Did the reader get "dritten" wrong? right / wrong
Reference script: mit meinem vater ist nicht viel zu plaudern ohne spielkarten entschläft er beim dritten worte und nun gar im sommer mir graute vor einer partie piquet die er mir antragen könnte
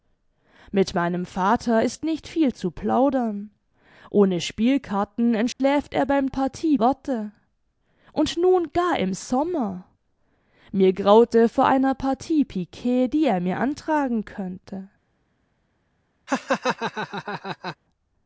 wrong